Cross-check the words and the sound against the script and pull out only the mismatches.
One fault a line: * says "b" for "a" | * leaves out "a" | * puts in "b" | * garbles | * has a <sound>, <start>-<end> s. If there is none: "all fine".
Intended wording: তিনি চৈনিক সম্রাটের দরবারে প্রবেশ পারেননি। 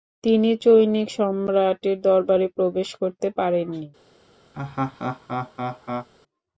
* puts in "করতে"
* has a laugh, 4.5-6.1 s